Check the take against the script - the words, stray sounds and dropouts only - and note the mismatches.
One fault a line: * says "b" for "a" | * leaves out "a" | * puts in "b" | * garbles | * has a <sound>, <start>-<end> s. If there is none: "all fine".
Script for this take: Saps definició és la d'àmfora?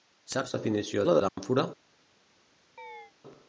* has a dropout, 1.3-1.4 s
* has a chirp, 2.8-3.1 s